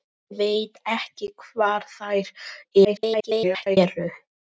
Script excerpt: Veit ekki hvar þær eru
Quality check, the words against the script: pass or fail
fail